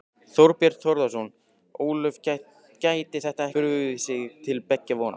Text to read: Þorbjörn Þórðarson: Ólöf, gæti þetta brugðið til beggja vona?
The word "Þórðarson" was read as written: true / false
true